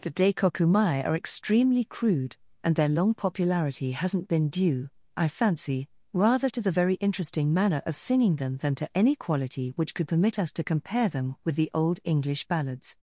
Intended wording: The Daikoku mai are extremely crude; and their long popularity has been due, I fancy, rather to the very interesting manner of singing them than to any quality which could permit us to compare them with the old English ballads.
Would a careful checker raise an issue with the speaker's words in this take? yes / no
yes